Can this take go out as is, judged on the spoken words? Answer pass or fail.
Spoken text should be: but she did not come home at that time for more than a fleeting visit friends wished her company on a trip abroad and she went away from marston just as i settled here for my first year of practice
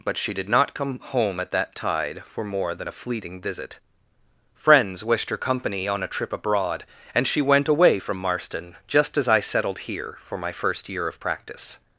fail